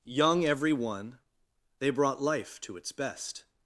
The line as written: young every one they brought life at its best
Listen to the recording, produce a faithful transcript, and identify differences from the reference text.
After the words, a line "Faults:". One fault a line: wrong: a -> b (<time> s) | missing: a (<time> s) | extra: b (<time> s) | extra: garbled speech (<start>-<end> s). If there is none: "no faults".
young every one they brought life to its best
Faults:
wrong: at -> to (2.6 s)